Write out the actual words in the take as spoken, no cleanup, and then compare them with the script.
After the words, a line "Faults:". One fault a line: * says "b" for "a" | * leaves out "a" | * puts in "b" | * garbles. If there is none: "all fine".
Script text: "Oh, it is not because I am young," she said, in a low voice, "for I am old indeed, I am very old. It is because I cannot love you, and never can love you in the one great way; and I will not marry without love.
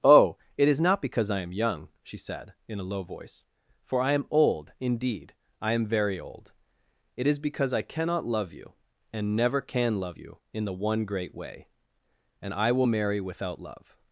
"Oh, it is not because I am young," she said, in a low voice, "for I am old indeed, I am very old. It is because I cannot love you, and never can love you in the one great way; and I will marry without love.
Faults:
* leaves out "not"